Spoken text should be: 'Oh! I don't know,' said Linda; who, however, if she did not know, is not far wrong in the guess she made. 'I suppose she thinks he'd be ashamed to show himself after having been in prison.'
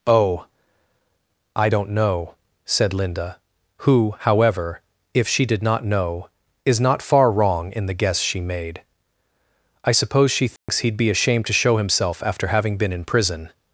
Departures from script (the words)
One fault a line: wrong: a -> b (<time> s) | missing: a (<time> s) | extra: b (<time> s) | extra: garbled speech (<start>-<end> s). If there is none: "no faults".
no faults